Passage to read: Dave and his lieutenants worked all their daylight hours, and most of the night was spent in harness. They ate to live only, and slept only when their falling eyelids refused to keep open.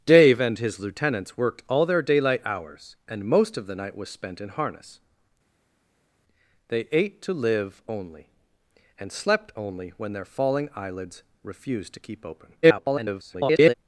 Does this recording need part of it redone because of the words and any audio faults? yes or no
yes